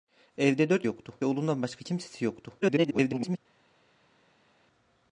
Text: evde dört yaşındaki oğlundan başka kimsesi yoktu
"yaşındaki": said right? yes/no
no